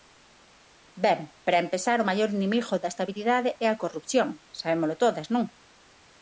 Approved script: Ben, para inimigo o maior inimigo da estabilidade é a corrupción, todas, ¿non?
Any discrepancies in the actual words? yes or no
yes